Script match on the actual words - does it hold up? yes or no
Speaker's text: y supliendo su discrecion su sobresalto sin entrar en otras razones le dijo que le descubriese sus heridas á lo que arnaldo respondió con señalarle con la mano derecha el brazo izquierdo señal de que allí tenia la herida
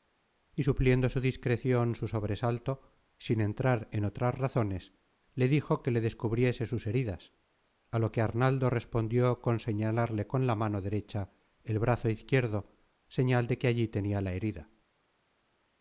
yes